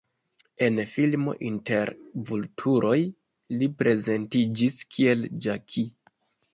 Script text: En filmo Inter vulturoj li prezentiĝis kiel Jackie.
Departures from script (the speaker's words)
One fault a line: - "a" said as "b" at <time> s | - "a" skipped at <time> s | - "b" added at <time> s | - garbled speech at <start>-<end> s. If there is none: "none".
none